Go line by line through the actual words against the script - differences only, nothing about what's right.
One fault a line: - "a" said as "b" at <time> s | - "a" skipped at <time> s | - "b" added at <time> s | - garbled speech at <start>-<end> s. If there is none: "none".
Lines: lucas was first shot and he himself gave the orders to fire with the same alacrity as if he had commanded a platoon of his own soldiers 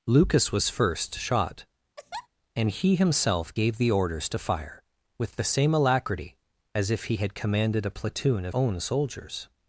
- "his" skipped at 8.5 s